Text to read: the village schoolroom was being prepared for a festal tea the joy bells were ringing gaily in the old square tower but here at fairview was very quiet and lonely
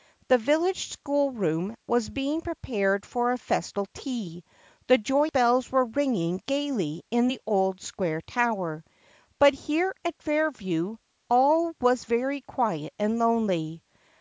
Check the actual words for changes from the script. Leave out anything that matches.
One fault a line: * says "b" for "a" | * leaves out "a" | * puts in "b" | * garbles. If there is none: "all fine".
* puts in "all"